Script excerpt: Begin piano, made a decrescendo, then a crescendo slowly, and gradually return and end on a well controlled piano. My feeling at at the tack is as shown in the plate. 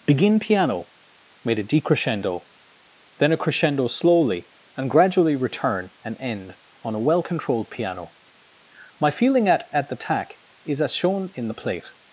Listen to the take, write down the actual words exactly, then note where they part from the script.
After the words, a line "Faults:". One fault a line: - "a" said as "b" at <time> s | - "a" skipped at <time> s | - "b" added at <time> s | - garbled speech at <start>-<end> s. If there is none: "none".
Begin piano, made a decrescendo, then a crescendo slowly, and gradually return and end on a well controlled piano. My feeling at at the tack is as shown in the plate.
Faults:
none